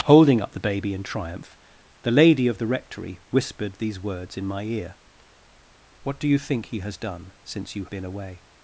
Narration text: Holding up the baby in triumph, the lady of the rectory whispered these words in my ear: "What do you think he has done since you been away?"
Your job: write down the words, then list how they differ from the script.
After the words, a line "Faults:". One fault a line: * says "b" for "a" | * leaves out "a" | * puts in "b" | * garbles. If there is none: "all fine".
Holding up the baby in triumph, the lady of the rectory whispered these words in my ear: "What do you think he has done since you been away?"
Faults:
all fine